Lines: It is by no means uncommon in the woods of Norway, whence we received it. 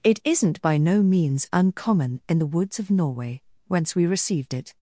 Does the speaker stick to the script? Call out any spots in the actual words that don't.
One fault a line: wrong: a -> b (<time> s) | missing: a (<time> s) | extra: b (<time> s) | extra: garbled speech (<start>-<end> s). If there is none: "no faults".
wrong: is -> isn't (0.2 s)